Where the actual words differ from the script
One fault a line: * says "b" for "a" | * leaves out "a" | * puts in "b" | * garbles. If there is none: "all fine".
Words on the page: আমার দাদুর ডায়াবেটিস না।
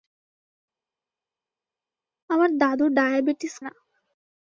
all fine